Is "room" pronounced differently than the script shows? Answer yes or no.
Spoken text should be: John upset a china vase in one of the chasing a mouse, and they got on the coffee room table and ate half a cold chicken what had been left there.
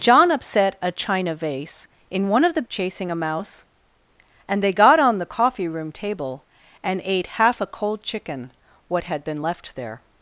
no